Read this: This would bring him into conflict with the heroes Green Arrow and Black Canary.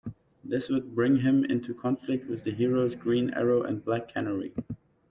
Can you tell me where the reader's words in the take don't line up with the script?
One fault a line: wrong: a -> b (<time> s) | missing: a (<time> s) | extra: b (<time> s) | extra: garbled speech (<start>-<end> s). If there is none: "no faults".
no faults